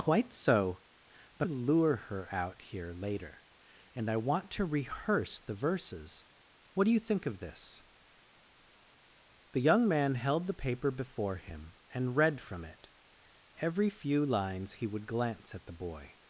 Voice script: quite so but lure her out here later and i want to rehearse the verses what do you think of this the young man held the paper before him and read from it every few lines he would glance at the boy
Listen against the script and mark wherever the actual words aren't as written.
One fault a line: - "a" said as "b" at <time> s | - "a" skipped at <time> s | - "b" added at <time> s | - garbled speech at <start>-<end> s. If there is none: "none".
none